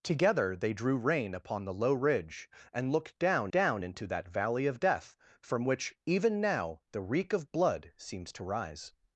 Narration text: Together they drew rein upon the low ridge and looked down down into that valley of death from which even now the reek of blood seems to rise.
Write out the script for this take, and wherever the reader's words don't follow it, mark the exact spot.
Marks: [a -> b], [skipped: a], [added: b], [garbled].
Together they drew rein upon the low ridge and looked down down into that valley of death from which even now the reek of blood seems to rise.